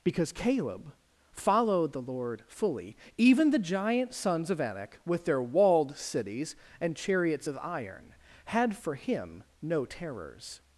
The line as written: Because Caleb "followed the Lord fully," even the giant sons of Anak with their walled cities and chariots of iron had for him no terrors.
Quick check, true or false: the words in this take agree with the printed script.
true